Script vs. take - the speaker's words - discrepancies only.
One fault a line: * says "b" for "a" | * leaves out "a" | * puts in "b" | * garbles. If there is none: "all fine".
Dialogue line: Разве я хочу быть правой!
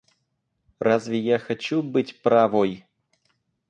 all fine